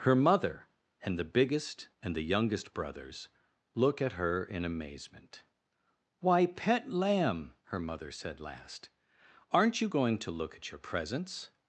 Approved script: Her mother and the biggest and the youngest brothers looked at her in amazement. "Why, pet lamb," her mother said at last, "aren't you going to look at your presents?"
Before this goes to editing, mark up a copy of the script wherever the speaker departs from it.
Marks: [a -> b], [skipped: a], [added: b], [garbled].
Her mother and the biggest and the youngest brothers [looked -> look] at her in amazement. "Why, pet lamb," her mother said [skipped: at] last, "aren't you going to look at your presents?"